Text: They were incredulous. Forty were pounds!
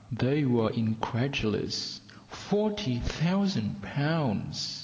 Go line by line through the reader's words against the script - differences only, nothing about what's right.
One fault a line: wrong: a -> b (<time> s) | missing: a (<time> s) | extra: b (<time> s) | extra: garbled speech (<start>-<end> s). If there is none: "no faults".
wrong: were -> thousand (3.0 s)